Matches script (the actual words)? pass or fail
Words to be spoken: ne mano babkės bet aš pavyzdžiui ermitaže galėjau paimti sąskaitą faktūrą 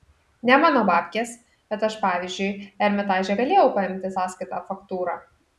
pass